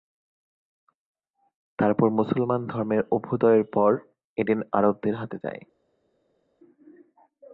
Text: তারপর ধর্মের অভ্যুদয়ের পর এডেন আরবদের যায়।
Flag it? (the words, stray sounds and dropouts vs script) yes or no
yes